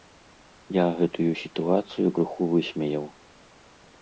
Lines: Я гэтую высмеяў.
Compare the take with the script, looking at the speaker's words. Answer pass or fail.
fail